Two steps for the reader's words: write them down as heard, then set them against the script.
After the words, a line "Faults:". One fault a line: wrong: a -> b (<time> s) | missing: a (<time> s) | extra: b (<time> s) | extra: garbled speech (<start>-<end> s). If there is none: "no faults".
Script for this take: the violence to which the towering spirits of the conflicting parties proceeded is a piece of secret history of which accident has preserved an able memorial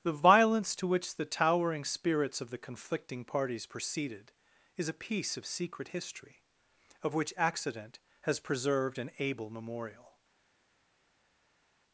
the violence to which the towering spirits of the conflicting parties proceeded is a piece of secret history of which accident has preserved an able memorial
Faults:
no faults